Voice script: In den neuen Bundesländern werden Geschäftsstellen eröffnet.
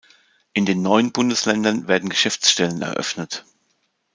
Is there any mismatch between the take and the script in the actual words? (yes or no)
no